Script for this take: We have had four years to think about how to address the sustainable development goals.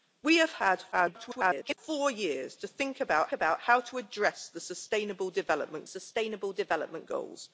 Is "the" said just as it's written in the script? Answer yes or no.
yes